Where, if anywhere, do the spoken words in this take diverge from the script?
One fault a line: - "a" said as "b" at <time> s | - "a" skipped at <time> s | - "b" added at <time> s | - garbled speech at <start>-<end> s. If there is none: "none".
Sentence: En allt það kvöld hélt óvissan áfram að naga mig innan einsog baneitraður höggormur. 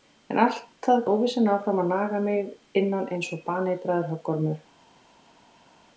- "kvöld hélt" skipped at 1.0 s